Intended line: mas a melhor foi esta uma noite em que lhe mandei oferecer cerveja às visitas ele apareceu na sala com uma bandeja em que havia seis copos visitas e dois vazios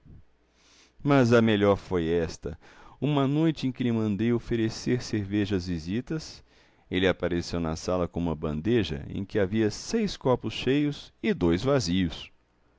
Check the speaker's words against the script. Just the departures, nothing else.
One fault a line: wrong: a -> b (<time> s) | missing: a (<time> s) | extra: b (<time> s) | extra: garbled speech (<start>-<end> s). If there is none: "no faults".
wrong: visitas -> cheios (10.5 s)